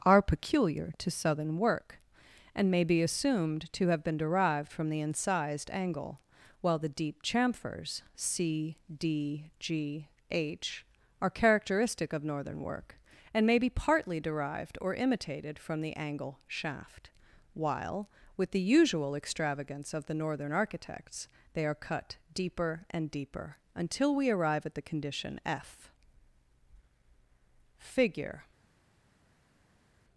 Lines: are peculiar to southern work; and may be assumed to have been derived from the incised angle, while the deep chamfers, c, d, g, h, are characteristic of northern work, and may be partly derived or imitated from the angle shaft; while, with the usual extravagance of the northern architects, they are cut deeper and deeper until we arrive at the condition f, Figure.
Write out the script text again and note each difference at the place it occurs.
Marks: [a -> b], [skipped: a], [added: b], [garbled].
are peculiar to southern work; and may be assumed to have been derived from the incised angle, while the deep chamfers, c, d, g, h, are characteristic of northern work, and may be partly derived or imitated from the angle shaft; while, with the usual extravagance of the northern architects, they are cut deeper and deeper until we arrive at the condition f, Figure.